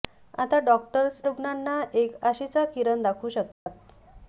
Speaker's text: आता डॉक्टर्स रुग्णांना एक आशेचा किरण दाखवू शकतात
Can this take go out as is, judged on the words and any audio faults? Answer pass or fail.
fail